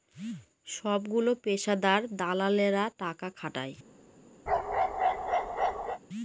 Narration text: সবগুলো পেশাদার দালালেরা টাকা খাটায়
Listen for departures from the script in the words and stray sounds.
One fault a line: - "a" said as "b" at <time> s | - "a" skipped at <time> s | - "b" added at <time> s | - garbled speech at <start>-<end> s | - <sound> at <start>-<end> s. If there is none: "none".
- bark at 4.5-6.0 s